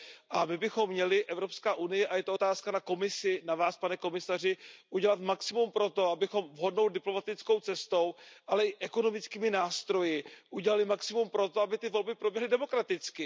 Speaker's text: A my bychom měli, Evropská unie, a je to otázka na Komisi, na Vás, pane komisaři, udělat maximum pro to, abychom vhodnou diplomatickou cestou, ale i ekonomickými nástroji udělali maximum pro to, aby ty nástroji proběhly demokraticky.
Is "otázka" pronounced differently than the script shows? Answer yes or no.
no